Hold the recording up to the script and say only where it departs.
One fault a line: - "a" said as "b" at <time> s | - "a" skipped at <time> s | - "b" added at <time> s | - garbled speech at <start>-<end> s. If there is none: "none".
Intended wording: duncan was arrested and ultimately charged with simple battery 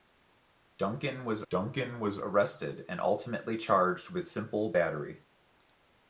- "duncan was" added at 1.5 s